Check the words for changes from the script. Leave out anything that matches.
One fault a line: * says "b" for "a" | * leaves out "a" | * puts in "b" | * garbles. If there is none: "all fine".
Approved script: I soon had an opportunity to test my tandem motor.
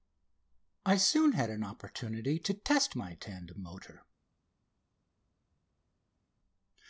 all fine